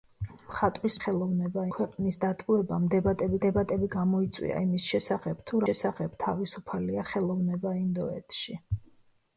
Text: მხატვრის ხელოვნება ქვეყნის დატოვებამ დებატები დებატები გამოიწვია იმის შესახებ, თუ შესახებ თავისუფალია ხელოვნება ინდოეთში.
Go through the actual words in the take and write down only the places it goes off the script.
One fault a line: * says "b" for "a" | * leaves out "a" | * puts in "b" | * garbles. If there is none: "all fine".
all fine